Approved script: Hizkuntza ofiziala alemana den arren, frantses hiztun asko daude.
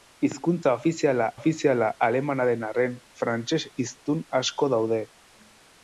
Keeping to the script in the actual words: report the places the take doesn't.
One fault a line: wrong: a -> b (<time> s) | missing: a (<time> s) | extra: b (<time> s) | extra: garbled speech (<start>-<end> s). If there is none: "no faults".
extra: ofiziala (1.4 s)